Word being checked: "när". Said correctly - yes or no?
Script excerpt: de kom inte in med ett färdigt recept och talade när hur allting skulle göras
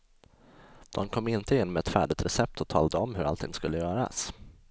no